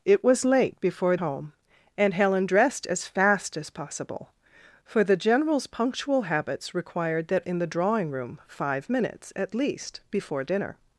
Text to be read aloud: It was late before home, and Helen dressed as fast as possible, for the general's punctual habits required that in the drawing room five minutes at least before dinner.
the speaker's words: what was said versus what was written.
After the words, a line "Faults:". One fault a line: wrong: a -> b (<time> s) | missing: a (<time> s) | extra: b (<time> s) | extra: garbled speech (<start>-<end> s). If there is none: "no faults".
It was late before home, and Helen dressed as fast as possible, for the general's punctual habits required that in the drawing room five minutes at least before dinner.
Faults:
no faults